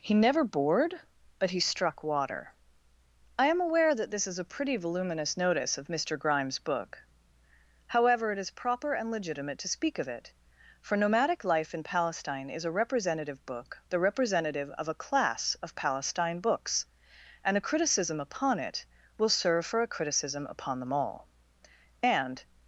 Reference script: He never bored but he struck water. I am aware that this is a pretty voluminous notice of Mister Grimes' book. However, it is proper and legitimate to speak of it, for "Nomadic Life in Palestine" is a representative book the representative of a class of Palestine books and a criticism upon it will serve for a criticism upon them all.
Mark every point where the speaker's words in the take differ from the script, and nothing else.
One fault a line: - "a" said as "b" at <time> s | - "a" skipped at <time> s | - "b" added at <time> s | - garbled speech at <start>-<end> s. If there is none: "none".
- "And" added at 22.0 s